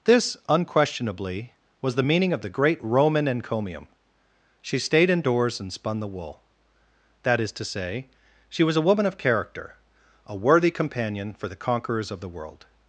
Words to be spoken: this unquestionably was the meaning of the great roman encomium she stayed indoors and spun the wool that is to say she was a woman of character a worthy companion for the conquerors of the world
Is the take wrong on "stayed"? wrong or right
right